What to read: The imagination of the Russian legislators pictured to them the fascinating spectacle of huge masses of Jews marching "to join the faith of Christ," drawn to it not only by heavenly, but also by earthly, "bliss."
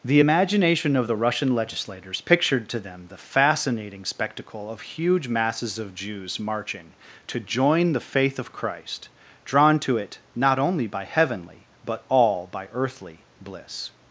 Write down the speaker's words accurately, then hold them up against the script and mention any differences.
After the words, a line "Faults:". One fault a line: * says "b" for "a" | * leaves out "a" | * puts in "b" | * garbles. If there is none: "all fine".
The imagination of the Russian legislators pictured to them the fascinating spectacle of huge masses of Jews marching "to join the faith of Christ," drawn to it not only by heavenly, but all by earthly, "bliss."
Faults:
* says "all" for "also"